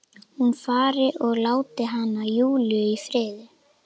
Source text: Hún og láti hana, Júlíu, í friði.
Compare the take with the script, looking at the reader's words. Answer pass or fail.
fail